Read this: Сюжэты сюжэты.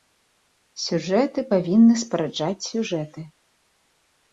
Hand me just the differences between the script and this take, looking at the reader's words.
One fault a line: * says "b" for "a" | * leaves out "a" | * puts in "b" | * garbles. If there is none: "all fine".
* puts in "павінны спараджаць"